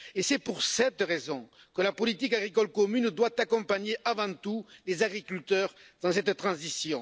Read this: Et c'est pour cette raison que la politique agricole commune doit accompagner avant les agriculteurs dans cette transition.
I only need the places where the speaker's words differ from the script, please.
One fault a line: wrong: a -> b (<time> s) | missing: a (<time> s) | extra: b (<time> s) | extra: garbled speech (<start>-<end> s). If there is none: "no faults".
extra: tout (4.3 s)